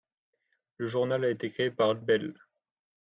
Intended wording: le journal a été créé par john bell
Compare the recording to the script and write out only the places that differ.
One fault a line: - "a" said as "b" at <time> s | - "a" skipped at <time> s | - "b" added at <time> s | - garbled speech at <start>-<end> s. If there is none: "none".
- "john" skipped at 2.0 s